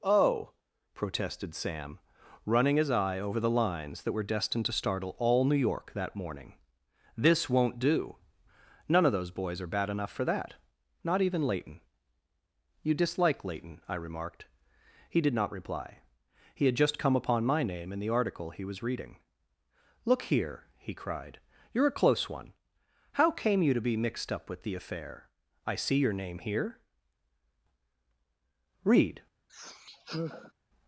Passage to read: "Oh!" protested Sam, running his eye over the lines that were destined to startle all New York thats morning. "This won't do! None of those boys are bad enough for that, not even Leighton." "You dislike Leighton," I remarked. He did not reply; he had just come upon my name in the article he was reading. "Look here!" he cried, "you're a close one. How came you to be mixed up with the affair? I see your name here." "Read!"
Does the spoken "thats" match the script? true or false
false